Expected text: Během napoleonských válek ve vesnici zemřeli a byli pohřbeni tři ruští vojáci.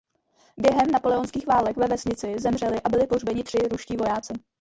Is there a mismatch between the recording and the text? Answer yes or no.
no